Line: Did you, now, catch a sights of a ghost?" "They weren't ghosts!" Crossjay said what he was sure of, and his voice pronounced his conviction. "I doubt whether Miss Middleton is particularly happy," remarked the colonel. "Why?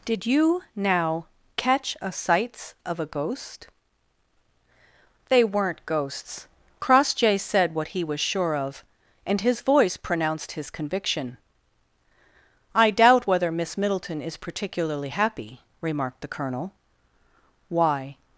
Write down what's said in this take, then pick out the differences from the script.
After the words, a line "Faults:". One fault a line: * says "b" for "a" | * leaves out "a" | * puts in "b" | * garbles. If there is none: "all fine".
Did you, now, catch a sights of a ghost?" "They weren't ghosts!" Crossjay said what he was sure of, and his voice pronounced his conviction. "I doubt whether Miss Middleton is particularly happy," remarked the colonel. "Why?
Faults:
all fine